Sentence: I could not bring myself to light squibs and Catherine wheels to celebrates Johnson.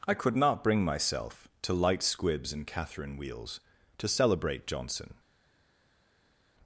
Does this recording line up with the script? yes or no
no